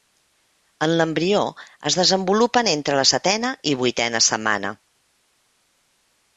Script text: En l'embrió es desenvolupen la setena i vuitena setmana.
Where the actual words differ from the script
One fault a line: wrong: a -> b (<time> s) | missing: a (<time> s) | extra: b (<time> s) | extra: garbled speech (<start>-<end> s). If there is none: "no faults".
extra: entre (2.7 s)